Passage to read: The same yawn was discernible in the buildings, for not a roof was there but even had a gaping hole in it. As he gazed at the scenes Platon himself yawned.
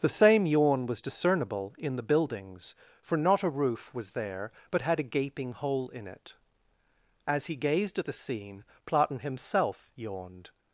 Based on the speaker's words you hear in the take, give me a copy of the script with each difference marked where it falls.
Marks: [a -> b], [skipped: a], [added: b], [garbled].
The same yawn was discernible in the buildings, for not a roof was there but [skipped: even] had a gaping hole in it. As he gazed at the [scenes -> scene] Platon himself yawned.